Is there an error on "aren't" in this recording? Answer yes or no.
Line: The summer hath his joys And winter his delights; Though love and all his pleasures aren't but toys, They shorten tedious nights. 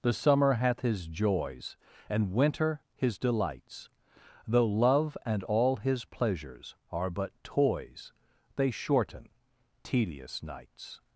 yes